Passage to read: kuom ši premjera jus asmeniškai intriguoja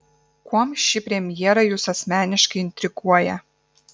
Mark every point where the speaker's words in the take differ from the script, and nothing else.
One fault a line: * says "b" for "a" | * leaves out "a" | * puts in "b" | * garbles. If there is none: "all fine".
all fine